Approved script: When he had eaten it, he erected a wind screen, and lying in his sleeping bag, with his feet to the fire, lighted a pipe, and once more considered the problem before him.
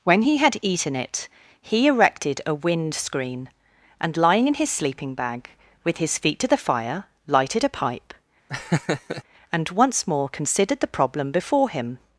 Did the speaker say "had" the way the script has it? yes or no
yes